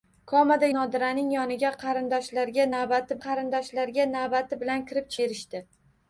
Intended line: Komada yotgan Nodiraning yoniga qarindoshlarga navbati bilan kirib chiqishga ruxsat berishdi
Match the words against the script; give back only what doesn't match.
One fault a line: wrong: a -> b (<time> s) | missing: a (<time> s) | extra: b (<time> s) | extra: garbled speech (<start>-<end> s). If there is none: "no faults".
missing: yotgan (0.7 s)
extra: qarindoshlarga navbati (3.3 s)
missing: chiqishga ruxsat (5.2 s)